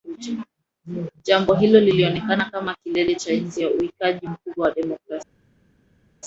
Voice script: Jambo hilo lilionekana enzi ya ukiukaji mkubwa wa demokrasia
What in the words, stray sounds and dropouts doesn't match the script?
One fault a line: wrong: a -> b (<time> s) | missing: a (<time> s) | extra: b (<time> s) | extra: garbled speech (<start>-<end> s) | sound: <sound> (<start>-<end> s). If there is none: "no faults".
extra: kama kilele cha (2.5 s)